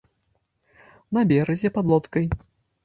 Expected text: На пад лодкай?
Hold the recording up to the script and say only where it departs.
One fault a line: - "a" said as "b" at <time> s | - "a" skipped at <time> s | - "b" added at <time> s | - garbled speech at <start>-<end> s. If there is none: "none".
- "беразе" added at 1.3 s